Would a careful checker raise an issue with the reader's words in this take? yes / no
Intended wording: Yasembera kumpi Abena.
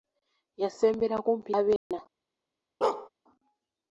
no